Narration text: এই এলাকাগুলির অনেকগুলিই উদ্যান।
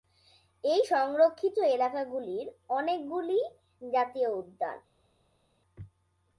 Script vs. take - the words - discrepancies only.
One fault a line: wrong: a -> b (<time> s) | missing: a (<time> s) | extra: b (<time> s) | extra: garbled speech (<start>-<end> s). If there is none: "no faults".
extra: সংরক্ষিত (0.8 s)
extra: জাতীয় (3.8 s)